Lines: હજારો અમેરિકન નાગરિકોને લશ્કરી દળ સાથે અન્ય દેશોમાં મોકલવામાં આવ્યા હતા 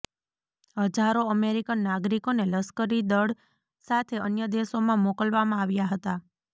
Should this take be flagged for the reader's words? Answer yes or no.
no